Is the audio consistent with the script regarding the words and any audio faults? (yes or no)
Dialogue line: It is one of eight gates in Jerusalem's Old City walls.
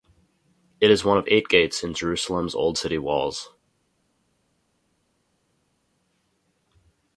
yes